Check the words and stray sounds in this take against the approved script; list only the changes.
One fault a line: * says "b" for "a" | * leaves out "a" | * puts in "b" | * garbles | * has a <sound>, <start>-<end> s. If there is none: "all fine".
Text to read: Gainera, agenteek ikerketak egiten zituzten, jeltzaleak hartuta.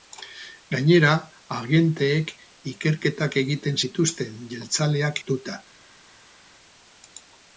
all fine